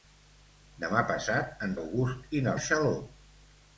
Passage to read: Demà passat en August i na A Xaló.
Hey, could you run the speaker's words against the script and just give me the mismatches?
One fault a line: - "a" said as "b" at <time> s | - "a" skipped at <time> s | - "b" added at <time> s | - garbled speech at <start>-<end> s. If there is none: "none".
none